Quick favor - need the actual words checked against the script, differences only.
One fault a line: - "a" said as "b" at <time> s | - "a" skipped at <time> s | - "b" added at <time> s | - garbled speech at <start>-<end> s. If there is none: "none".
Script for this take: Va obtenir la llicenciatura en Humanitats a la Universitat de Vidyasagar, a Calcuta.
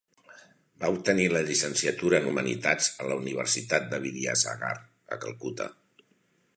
none